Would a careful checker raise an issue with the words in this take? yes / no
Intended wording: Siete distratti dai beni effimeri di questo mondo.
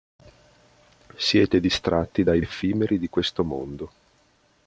yes